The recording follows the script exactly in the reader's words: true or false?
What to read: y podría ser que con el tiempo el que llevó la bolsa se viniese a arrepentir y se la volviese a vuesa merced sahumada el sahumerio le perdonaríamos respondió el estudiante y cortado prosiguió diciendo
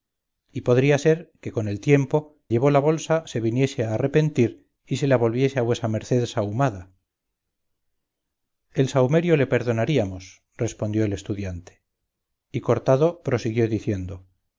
false